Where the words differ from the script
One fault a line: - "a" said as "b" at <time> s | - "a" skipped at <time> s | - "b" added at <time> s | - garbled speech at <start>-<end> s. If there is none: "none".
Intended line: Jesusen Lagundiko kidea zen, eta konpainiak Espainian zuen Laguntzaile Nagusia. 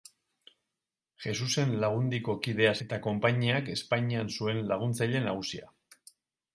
- "zen" skipped at 2.7 s